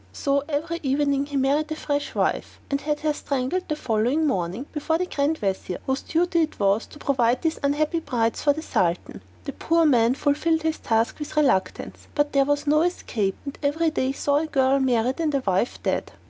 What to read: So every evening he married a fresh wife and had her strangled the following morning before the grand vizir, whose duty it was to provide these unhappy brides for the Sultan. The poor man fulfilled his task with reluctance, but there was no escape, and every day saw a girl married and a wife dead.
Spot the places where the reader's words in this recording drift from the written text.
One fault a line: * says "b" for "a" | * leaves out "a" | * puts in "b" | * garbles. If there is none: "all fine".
all fine